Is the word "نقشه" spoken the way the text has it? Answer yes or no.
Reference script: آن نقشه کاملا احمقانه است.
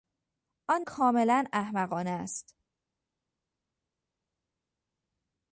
no